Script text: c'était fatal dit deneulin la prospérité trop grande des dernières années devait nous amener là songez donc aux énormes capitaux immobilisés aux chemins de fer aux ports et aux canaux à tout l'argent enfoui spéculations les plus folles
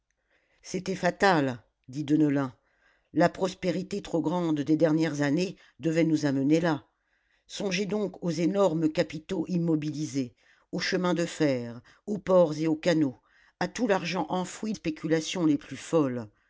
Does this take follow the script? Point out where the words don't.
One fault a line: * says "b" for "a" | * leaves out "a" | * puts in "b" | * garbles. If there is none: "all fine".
all fine